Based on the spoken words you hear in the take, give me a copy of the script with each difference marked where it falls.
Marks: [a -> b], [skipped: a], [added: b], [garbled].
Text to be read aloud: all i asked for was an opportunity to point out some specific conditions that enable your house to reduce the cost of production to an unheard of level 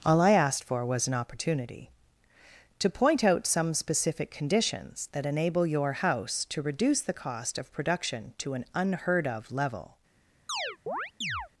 all i asked for was an opportunity to point out some specific conditions that enable your house to reduce the cost of production to an unheard of level